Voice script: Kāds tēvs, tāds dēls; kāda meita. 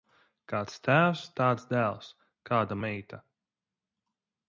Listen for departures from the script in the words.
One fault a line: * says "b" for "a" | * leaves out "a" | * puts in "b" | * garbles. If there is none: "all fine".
all fine